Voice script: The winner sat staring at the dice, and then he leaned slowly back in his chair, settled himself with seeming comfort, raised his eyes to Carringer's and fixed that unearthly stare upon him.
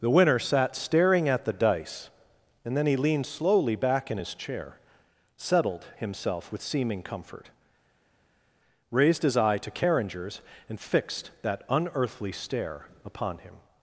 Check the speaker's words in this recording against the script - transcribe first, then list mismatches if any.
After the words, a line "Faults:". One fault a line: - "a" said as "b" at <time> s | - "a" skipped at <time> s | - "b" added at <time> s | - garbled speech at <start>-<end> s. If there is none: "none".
The winner sat staring at the dice, and then he leaned slowly back in his chair, settled himself with seeming comfort, raised his eye to Carringer's and fixed that unearthly stare upon him.
Faults:
- "eyes" said as "eye" at 9.4 s